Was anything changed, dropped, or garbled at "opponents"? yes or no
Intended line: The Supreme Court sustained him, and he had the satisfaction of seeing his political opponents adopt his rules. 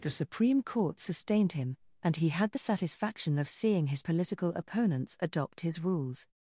no